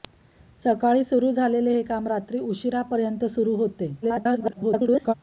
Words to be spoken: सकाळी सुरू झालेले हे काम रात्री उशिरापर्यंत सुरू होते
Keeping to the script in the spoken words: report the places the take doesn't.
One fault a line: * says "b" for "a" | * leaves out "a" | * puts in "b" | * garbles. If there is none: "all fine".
* garbles